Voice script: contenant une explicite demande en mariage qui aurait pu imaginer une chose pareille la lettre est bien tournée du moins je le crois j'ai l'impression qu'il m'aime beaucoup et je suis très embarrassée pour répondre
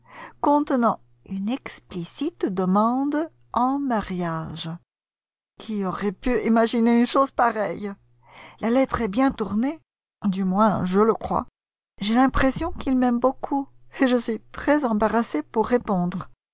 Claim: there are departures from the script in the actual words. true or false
false